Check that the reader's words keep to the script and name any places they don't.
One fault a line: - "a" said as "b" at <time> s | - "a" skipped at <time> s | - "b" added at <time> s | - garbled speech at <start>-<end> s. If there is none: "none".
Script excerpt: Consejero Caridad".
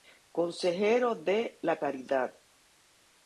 - "de La" added at 1.1 s